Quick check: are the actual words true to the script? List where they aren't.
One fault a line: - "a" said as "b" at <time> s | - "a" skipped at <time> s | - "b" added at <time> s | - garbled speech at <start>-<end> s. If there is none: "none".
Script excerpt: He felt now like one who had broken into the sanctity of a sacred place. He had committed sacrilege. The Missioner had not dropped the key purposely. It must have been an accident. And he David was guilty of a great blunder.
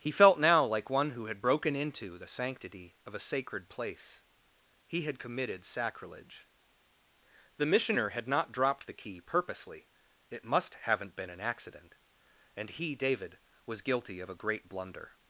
- "have" said as "haven't" at 10.8 s